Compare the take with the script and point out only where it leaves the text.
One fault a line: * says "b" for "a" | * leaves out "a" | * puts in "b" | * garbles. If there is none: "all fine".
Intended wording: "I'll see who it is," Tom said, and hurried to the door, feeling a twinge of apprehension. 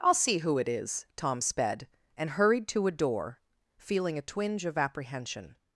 * says "sped" for "said"
* says "a" for "the"